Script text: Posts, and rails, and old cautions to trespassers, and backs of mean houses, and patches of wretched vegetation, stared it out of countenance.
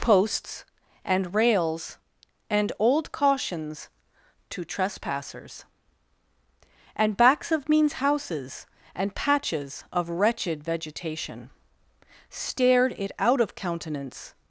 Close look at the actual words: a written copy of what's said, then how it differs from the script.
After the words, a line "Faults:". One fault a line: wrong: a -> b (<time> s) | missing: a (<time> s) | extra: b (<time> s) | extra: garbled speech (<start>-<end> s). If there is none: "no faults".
Posts, and rails, and old cautions to trespassers, and backs of means houses, and patches of wretched vegetation, stared it out of countenance.
Faults:
wrong: mean -> means (7.7 s)